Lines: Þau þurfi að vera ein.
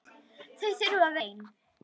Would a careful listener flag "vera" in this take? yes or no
yes